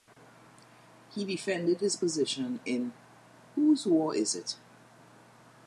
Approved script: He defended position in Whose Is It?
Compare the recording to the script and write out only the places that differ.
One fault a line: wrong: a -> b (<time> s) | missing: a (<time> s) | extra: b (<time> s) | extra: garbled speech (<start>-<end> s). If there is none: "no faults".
extra: his (1.8 s)
extra: War (3.9 s)